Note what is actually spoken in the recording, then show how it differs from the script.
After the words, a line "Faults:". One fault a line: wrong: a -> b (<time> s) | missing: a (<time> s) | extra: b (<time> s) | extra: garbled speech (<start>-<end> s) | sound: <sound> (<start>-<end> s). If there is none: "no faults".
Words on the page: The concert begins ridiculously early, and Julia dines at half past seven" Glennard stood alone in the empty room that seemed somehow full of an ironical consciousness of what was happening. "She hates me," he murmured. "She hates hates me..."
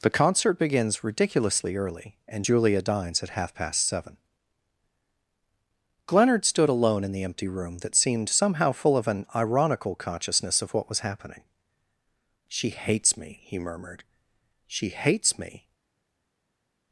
The concert begins ridiculously early, and Julia dines at half past seven" Glennard stood alone in the empty room that seemed somehow full of an ironical consciousness of what was happening. "She hates me," he murmured. "She hates me..."
Faults:
missing: hates (15.4 s)